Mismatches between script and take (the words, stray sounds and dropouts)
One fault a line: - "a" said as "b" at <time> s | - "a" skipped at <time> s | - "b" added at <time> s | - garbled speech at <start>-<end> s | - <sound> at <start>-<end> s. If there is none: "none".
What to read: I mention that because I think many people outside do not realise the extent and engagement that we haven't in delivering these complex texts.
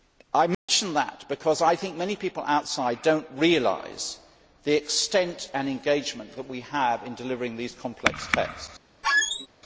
- dropout at 0.5-0.7 s
- "haven't" said as "have" at 6.6 s
- squeak at 9.0-9.5 s